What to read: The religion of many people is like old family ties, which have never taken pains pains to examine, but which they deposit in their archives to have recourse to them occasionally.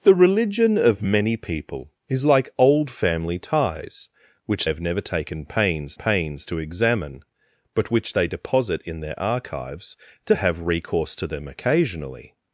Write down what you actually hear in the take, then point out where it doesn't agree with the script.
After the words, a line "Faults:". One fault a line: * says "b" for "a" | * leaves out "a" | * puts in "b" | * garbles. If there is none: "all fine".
The religion of many people is like old family ties, which have never taken pains pains to examine, but which they deposit in their archives to have recourse to them occasionally.
Faults:
all fine